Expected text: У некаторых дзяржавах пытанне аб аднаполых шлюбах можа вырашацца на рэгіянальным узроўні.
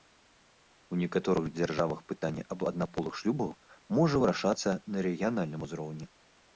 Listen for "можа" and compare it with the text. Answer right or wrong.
right